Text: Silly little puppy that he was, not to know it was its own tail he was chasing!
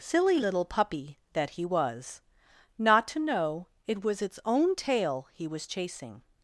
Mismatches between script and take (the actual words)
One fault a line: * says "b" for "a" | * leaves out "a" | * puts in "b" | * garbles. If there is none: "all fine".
all fine